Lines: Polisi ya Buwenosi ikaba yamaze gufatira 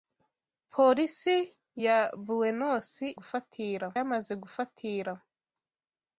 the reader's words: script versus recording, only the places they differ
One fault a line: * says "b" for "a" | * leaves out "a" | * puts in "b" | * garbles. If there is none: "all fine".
* says "gufatira" for "ikaba"